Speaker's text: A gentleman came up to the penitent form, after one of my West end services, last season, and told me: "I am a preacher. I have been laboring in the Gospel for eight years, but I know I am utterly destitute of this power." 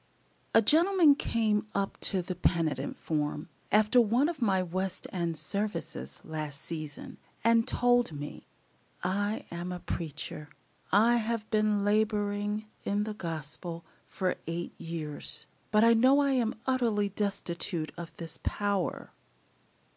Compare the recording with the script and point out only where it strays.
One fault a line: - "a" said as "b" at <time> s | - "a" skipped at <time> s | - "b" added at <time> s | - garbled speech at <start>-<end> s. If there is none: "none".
none